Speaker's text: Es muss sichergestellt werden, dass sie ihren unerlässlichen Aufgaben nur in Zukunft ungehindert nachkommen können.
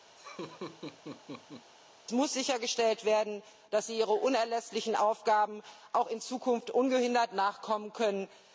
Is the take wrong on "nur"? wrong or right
wrong